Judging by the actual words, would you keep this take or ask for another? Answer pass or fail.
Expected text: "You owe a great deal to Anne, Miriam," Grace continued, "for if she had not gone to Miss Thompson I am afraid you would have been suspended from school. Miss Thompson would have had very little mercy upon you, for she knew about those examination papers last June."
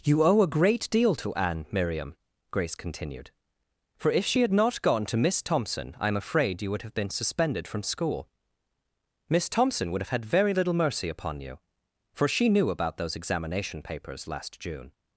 pass